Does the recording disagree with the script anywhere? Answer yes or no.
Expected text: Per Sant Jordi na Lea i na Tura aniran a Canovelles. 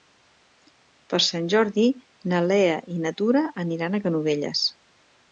no